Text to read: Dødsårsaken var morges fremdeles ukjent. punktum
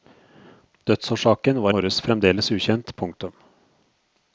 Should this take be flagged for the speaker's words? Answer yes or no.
no